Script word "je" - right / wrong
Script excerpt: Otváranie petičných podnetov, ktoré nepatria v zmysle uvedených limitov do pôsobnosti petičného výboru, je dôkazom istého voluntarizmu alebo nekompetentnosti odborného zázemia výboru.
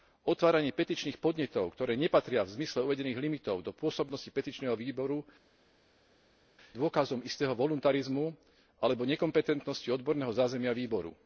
wrong